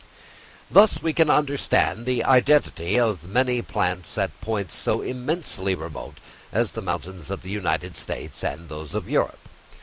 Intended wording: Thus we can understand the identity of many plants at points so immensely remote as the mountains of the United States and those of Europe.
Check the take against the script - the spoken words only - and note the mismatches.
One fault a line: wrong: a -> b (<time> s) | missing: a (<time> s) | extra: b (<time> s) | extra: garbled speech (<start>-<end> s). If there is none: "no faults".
no faults